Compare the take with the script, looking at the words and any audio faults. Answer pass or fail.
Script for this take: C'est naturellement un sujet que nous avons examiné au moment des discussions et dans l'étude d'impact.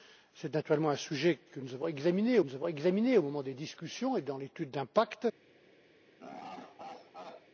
fail